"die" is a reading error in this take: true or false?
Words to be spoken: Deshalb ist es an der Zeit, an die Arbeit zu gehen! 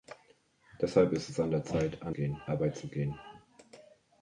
true